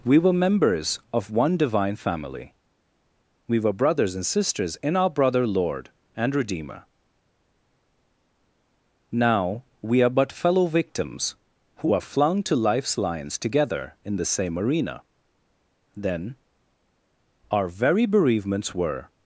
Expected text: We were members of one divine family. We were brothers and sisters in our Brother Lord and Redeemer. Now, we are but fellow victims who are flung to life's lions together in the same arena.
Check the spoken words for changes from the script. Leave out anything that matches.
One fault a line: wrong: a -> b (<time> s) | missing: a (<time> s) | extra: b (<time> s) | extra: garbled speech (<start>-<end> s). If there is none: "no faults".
extra: Then our very bereavements were (15.9 s)